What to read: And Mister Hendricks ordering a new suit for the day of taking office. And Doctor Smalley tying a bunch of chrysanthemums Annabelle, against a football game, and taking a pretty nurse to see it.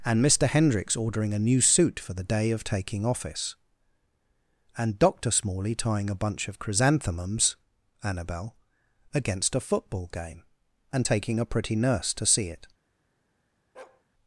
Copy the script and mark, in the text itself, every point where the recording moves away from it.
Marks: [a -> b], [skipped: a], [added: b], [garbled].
And Mister Hendricks ordering a new suit for the day of taking office. And Doctor Smalley tying a bunch of chrysanthemums Annabelle, against a football game, and taking a pretty nurse to see it.